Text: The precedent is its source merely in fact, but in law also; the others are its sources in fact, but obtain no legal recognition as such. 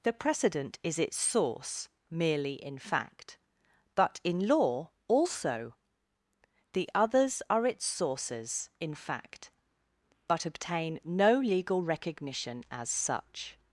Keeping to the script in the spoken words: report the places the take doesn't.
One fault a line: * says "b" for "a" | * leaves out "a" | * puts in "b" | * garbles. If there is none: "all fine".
all fine